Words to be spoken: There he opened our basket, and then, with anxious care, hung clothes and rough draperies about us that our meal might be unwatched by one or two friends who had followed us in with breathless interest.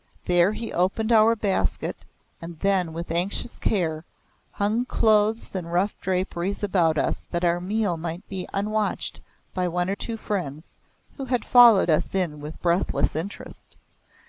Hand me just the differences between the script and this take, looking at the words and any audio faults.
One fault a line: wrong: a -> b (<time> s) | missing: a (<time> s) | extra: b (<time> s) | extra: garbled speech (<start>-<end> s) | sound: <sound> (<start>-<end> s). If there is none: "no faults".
no faults